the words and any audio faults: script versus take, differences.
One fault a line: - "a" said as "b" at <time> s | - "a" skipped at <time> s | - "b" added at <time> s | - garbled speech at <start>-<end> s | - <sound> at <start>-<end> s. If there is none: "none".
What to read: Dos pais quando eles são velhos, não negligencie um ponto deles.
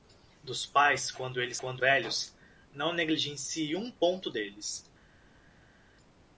- "são" said as "quando" at 1.5 s